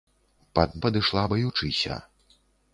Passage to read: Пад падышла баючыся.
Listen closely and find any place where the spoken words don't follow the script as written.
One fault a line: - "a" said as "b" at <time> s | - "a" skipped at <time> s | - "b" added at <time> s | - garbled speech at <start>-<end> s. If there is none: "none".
none